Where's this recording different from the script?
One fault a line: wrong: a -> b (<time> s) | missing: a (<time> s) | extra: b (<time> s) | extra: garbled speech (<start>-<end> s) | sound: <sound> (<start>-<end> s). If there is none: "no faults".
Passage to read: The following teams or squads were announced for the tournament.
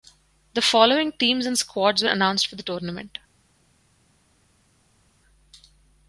wrong: or -> and (1.4 s)